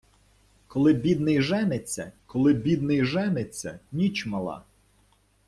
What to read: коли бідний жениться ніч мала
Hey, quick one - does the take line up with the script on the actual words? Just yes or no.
no